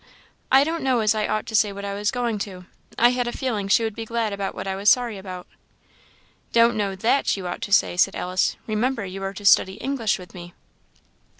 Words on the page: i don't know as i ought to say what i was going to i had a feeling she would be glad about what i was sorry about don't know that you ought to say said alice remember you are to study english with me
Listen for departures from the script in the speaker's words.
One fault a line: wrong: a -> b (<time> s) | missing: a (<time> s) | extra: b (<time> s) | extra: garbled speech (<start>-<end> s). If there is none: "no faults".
no faults